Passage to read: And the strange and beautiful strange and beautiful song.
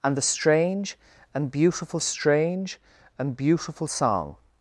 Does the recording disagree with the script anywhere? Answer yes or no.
no